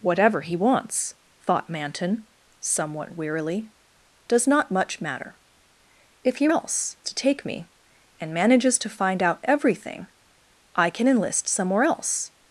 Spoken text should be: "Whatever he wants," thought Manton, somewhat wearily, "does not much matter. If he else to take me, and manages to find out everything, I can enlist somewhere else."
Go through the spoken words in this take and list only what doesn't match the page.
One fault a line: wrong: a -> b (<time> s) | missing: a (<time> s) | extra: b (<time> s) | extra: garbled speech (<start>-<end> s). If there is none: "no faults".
no faults